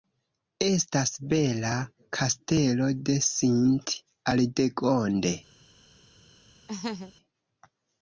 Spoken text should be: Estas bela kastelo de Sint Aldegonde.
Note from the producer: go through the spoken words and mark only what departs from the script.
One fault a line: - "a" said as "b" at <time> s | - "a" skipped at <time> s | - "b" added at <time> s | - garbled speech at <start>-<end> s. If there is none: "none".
none